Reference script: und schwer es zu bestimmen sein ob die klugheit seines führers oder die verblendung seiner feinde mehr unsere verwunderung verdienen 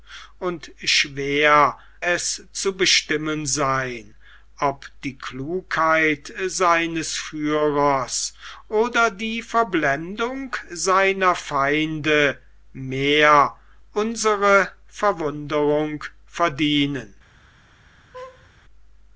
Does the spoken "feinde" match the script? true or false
true